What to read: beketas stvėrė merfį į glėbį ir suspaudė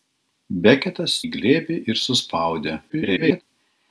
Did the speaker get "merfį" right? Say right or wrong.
wrong